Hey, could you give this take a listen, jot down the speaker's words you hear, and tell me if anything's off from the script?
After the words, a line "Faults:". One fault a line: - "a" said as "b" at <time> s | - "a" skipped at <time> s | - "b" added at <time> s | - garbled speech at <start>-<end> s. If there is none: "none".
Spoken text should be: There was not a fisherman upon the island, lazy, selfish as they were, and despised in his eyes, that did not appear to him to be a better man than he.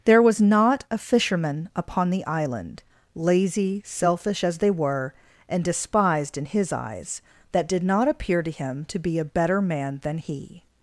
There was not a fisherman upon the island, lazy, selfish as they were, and despised in his eyes, that did not appear to him to be a better man than he.
Faults:
none